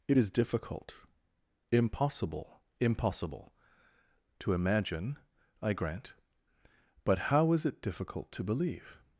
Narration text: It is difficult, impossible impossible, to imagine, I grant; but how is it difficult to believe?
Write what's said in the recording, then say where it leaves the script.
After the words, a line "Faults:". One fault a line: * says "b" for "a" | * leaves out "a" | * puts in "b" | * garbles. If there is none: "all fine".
It is difficult, impossible impossible, to imagine, I grant; but how is it difficult to believe?
Faults:
all fine